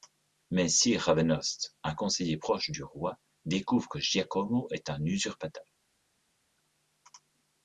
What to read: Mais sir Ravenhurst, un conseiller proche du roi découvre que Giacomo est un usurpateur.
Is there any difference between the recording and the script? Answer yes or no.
no